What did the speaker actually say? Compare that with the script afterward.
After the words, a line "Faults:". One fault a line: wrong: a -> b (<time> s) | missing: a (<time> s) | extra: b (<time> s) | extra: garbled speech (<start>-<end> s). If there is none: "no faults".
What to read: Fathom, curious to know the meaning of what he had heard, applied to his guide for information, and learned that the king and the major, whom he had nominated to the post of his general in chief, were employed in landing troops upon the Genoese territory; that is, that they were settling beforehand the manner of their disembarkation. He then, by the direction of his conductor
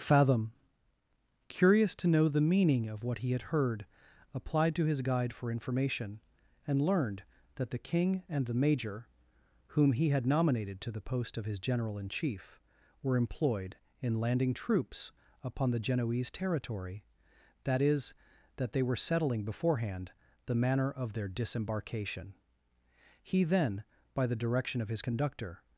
Fathom, curious to know the meaning of what he had heard, applied to his guide for information, and learned that the king and the major, whom he had nominated to the post of his general in chief, were employed in landing troops upon the Genoese territory; that is, that they were settling beforehand the manner of their disembarkation. He then, by the direction of his conductor
Faults:
no faults